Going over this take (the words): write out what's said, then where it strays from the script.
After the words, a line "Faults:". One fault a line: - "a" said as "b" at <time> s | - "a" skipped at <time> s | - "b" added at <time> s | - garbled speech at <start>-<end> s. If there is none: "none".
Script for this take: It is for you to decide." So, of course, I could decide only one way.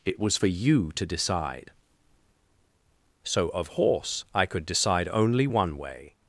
It was for you to decide." So, of horse, I could decide only one way.
Faults:
- "is" said as "was" at 0.2 s
- "course" said as "horse" at 3.6 s